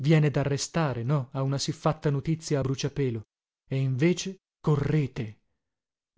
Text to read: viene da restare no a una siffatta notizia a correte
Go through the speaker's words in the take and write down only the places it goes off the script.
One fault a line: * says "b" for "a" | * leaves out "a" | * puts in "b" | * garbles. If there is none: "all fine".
* puts in "bruciapelo e invece"